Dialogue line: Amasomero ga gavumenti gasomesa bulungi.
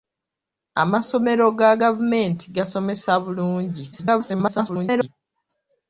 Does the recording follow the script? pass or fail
fail